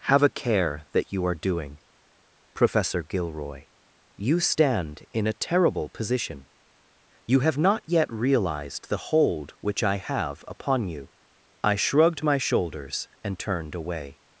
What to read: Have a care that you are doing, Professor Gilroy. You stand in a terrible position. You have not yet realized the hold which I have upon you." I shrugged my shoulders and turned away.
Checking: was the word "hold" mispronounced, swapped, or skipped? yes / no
no